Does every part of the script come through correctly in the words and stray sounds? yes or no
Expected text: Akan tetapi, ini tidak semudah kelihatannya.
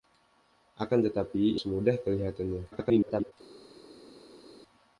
no